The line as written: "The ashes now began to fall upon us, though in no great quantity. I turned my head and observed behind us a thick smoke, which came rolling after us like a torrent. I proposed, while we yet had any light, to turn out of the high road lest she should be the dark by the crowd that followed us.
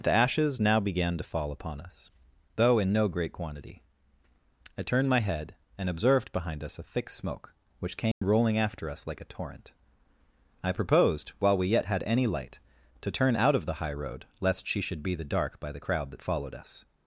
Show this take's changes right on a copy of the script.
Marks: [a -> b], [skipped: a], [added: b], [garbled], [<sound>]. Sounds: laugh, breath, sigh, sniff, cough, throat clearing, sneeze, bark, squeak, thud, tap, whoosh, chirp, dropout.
"The ashes now began to fall upon us, though in no great quantity. I turned my head and observed behind us a thick smoke, which came [dropout] rolling after us like a torrent. I proposed, while we yet had any light, to turn out of the high road lest she should be the dark by the crowd that followed us.